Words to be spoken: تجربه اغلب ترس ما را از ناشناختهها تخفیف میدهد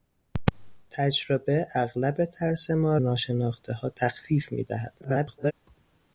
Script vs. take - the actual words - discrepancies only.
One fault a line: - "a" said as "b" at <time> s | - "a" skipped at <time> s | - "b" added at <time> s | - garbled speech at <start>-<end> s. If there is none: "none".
- "را از" skipped at 3.0 s
- garbled speech at 5.0-5.5 s